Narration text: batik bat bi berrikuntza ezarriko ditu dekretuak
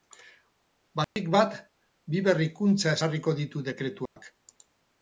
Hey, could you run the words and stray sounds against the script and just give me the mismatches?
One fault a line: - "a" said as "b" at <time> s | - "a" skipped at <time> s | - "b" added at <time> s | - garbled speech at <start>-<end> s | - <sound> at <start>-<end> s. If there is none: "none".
- dropout at 1.0-1.2 s
- dropout at 4.1-4.2 s